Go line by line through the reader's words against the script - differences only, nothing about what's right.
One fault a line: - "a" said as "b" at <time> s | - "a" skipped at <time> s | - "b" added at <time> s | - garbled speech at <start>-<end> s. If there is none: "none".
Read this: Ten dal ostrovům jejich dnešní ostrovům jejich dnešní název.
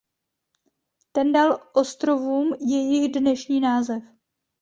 - "ostrovům jejich dnešní" skipped at 3.6 s